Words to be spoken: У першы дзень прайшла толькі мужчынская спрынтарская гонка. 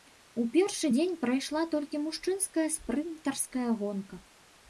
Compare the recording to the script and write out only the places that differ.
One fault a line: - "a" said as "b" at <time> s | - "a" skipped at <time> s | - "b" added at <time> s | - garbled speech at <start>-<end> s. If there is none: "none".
none